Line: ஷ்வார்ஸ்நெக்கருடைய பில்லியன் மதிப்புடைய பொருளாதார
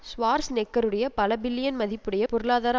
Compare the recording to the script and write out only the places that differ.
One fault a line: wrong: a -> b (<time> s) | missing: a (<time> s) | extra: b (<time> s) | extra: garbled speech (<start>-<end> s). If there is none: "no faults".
extra: பல (1.1 s)